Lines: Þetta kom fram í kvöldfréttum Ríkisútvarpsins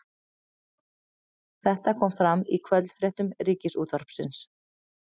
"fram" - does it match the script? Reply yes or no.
yes